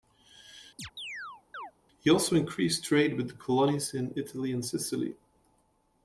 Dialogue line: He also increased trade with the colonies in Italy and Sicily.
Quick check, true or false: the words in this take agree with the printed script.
true